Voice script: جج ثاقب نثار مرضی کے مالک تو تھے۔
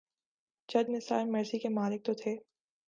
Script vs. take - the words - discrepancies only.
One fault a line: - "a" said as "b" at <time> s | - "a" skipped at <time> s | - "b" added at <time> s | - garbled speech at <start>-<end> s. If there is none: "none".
- "ثاقب" skipped at 0.9 s